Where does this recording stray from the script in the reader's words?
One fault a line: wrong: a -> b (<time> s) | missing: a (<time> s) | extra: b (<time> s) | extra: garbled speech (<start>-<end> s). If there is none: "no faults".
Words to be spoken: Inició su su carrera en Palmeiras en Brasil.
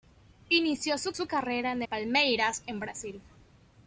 no faults